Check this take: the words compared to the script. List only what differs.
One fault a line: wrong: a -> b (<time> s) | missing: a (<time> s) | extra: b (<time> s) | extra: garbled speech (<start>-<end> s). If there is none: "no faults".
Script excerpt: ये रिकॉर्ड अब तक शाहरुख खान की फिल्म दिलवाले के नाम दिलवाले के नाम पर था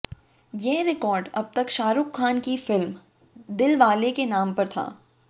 missing: दिलवाले के नाम (4.5 s)